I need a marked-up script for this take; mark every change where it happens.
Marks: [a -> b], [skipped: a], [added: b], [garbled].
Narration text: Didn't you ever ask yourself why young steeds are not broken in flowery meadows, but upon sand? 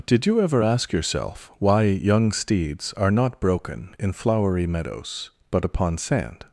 [Didn't -> Did] you ever ask yourself why young steeds are not broken in flowery meadows, but upon sand?